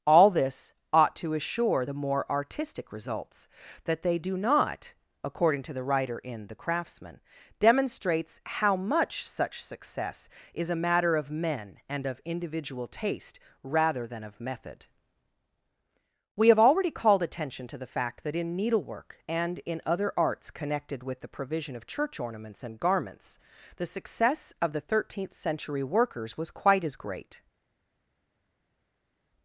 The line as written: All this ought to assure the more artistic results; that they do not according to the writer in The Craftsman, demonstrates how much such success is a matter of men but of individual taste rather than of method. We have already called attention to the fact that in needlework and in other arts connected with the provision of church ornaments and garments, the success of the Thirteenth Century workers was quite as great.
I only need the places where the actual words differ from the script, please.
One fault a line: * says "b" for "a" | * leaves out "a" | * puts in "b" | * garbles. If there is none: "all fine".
* says "and" for "but"